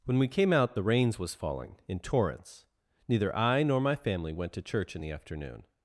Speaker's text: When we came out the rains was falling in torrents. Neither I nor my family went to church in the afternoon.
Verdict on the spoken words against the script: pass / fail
pass